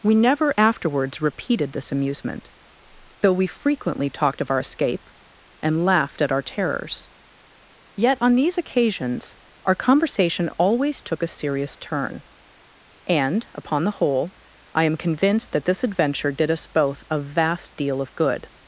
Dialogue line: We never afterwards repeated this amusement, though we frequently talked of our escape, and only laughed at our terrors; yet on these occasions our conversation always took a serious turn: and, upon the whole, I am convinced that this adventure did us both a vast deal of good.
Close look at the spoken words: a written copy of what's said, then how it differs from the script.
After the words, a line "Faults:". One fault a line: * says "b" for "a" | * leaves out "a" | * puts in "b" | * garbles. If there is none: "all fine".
We never afterwards repeated this amusement, though we frequently talked of our escape, and laughed at our terrors; yet on these occasions our conversation always took a serious turn: and, upon the whole, I am convinced that this adventure did us both a vast deal of good.
Faults:
* leaves out "only"